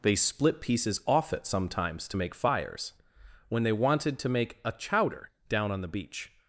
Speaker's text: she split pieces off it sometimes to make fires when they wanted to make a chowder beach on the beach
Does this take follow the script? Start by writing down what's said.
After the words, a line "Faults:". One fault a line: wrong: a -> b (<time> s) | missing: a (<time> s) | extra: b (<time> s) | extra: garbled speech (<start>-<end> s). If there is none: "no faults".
they split pieces off it sometimes to make fires when they wanted to make a chowder down on the beach
Faults:
wrong: she -> they (0.0 s)
wrong: beach -> down (5.5 s)